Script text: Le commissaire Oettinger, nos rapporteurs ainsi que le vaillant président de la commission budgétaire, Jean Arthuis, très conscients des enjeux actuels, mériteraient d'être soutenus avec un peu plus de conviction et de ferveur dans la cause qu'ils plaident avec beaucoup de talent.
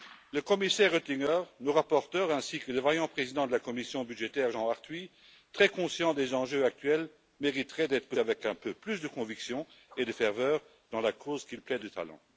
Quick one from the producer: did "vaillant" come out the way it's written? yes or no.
yes